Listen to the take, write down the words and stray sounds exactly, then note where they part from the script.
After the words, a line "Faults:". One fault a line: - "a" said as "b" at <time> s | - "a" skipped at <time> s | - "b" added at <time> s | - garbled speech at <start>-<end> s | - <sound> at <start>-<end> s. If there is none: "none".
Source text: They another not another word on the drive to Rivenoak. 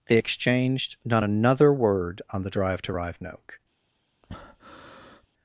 They exchanged not another word on the drive to Rivenoak.
Faults:
- "another" said as "exchanged" at 0.1 s
- breath at 4.2-5.3 s